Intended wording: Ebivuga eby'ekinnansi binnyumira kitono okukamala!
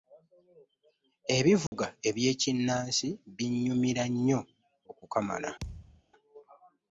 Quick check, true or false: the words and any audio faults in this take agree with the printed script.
false